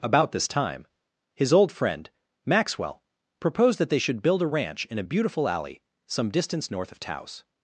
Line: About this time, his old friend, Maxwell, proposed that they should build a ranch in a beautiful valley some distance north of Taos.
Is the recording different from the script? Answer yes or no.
yes